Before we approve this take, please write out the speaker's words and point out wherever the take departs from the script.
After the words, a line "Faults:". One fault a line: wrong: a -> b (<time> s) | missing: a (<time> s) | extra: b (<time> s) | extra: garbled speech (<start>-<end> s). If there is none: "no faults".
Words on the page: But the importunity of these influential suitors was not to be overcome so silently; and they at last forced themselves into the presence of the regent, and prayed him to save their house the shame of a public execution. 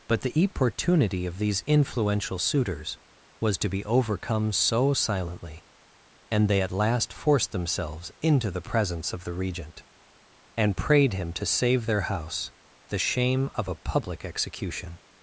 But the importunity of these influential suitors was to be overcome so silently; and they at last forced themselves into the presence of the regent, and prayed him to save their house the shame of a public execution.
Faults:
missing: not (3.6 s)